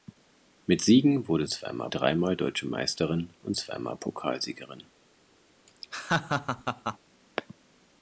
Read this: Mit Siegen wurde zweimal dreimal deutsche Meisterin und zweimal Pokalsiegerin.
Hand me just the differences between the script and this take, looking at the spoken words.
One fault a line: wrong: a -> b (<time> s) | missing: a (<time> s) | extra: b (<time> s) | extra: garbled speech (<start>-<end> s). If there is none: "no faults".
no faults